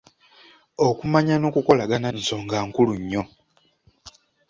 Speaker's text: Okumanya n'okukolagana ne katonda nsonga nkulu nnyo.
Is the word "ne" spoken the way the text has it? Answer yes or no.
no